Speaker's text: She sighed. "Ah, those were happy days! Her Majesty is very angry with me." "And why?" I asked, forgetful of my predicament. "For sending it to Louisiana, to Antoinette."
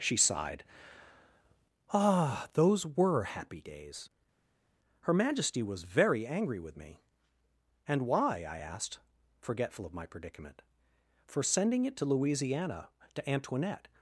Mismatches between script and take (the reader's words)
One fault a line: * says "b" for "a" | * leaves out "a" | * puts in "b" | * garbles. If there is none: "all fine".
* says "was" for "is"